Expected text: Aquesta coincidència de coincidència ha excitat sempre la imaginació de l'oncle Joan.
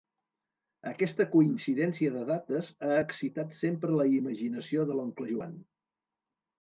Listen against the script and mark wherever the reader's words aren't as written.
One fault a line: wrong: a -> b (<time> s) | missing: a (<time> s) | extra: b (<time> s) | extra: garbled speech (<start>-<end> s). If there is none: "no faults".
wrong: coincidència -> dates (2.3 s)